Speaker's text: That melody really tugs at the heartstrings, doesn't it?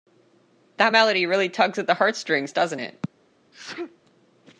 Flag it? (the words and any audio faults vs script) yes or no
yes